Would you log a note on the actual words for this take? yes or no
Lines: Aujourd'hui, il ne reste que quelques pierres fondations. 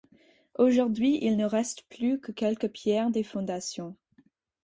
yes